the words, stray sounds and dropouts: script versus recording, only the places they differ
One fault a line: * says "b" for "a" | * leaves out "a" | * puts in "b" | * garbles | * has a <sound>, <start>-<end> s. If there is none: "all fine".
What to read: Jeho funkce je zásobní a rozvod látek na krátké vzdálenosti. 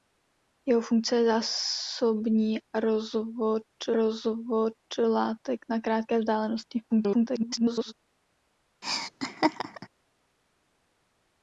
* puts in "rozvod"
* garbles
* has a laugh, 8.8-9.9 s